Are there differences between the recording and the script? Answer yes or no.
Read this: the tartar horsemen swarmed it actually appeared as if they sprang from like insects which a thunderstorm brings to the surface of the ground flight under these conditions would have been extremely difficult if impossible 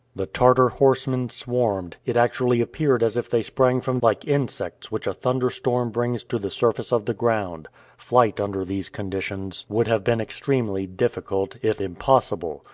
no